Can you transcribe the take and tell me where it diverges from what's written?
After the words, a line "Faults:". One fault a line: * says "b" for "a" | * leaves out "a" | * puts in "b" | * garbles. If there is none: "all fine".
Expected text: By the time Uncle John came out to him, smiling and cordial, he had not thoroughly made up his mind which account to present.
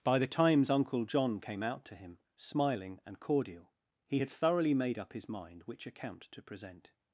By the times Uncle John came out to him, smiling and cordial, he had thoroughly made up his mind which account to present.
Faults:
* says "times" for "time"
* leaves out "not"